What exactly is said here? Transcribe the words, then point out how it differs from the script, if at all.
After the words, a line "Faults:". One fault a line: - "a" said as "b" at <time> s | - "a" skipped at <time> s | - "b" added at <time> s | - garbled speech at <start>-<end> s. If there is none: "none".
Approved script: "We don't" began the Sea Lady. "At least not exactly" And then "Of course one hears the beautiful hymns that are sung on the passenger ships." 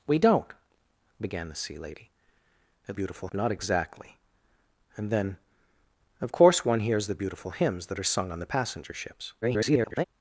"We don't" began the Sea Lady. "At beautiful not exactly" And then "Of course one hears the beautiful hymns that are sung on the passenger ships." [garbled]
Faults:
- "least" said as "beautiful" at 2.9 s
- garbled speech at 9.4-10.0 s